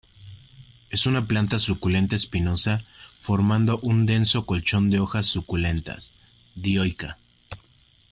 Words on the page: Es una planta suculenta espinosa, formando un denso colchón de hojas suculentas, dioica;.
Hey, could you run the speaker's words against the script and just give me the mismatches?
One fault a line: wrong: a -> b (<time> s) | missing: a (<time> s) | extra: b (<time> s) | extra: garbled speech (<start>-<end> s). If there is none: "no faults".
no faults